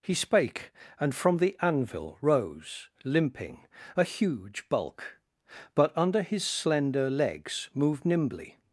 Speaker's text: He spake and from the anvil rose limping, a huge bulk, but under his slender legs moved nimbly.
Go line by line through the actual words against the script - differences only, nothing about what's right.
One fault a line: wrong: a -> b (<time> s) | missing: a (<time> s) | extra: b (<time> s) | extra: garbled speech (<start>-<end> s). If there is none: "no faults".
no faults